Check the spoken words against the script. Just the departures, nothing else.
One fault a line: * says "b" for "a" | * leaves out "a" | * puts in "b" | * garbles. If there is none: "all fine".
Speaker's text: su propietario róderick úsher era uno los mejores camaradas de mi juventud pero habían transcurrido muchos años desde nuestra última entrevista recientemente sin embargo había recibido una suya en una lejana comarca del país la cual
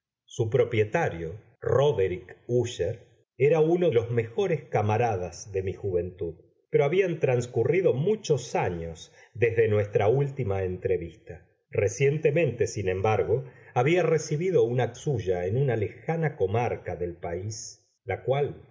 all fine